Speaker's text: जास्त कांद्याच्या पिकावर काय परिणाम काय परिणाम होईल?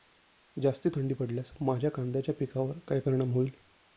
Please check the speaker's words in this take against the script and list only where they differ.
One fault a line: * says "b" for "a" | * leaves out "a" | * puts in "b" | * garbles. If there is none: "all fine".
* puts in "थंडी पडल्यास माझ्या"
* leaves out "काय परिणाम"